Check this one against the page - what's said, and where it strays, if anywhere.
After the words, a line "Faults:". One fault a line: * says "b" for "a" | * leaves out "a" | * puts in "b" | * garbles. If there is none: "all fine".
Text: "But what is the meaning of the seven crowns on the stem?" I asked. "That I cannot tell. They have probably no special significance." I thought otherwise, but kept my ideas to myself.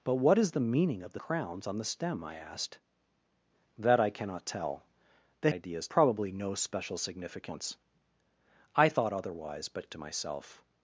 "But what is the meaning of the crowns on the stem?" I asked. "That I cannot tell. They ideas probably no special significance." I thought otherwise, but to myself.
Faults:
* leaves out "seven"
* says "ideas" for "have"
* leaves out "kept my ideas"